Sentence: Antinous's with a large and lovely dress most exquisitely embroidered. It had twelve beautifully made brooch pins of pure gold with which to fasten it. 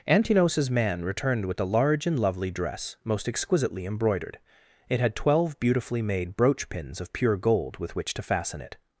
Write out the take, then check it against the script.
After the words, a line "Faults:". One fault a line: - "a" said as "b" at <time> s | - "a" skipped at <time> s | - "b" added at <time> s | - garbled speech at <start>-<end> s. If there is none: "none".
Antinous's man returned with a large and lovely dress most exquisitely embroidered. It had twelve beautifully made brooch pins of pure gold with which to fasten it.
Faults:
- "man returned" added at 0.7 s